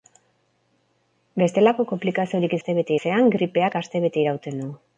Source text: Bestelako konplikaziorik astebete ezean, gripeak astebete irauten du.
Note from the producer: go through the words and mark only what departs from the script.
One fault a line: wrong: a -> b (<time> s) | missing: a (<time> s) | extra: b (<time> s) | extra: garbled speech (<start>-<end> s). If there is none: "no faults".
no faults